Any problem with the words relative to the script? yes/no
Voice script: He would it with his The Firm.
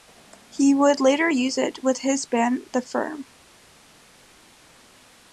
yes